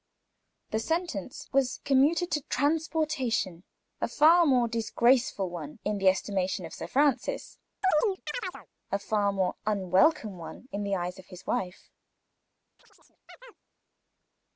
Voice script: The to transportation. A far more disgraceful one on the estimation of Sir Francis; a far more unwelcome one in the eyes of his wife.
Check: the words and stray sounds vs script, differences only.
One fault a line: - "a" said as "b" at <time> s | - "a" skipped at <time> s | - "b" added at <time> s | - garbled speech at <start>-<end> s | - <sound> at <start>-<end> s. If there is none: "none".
- "sentence was commuted" added at 0.8 s
- "on" said as "in" at 5.8 s
- chirp at 7.8-8.7 s
- chirp at 12.8-13.6 s